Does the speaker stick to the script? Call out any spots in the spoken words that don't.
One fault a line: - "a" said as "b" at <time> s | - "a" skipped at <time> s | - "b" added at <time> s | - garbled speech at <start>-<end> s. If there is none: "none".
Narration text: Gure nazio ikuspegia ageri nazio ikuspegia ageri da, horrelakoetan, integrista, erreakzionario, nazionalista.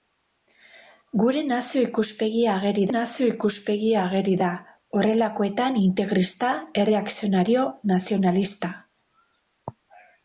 none